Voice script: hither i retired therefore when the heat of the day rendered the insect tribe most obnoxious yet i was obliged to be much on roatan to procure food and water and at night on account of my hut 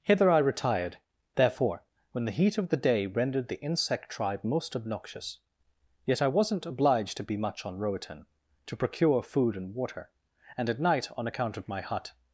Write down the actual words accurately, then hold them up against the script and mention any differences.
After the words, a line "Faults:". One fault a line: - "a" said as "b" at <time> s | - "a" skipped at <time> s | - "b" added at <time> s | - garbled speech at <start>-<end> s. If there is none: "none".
hither i retired therefore when the heat of the day rendered the insect tribe most obnoxious yet i wasn't obliged to be much on roatan to procure food and water and at night on account of my hut
Faults:
- "was" said as "wasn't" at 6.3 s